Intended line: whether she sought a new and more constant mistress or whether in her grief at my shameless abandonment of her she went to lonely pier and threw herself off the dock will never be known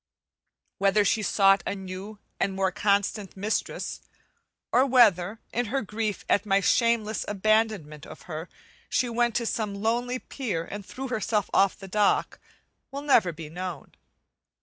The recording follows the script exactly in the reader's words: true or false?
false